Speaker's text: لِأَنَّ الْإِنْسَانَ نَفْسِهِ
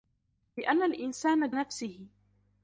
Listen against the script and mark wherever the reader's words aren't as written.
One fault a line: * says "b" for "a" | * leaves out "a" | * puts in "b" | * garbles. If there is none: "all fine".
all fine